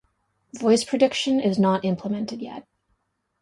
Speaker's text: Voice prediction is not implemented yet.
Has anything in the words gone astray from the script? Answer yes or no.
no